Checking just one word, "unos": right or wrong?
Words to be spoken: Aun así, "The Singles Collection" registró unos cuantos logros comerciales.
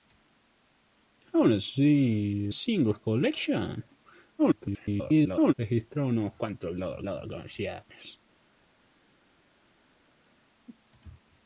right